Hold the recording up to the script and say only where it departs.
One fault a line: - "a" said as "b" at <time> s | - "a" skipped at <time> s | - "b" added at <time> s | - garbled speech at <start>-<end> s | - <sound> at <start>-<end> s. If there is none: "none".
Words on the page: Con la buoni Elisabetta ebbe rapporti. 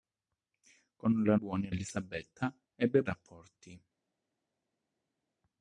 none